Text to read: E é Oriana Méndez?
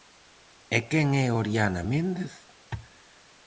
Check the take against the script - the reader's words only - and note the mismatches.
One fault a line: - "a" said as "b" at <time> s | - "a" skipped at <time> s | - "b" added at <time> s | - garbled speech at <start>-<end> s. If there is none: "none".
- "quen" added at 0.9 s